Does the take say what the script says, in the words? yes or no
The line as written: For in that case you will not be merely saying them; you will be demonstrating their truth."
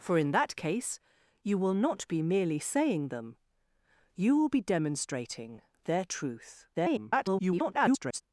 no